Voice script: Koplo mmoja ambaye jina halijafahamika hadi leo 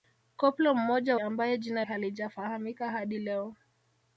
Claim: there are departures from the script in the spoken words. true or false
false